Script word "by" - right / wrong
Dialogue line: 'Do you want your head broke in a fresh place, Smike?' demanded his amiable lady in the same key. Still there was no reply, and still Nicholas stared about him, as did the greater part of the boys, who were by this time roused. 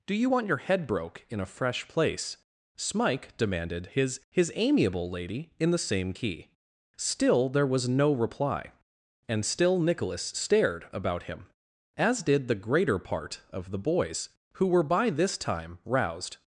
right